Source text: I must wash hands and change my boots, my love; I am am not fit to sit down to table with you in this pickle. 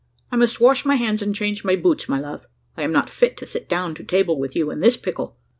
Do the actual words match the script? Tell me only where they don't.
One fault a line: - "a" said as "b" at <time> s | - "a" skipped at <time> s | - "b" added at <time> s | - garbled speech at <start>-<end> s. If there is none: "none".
- "my" added at 0.8 s
- "am" skipped at 2.9 s